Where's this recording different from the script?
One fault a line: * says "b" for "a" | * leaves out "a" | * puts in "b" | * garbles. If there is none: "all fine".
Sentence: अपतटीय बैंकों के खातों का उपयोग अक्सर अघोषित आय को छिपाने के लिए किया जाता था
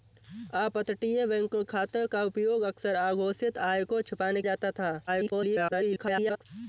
* leaves out "के"
* leaves out "के लिए किया"
* garbles